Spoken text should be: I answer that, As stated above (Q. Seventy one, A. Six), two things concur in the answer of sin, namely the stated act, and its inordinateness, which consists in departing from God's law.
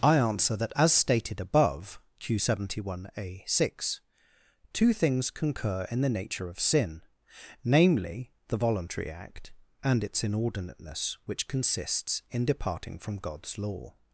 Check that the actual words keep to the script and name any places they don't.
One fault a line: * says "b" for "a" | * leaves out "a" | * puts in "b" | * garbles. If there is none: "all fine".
* says "nature" for "answer"
* says "voluntary" for "stated"